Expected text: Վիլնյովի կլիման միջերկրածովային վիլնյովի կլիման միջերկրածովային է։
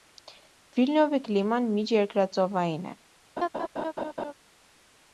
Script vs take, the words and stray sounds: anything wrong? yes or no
yes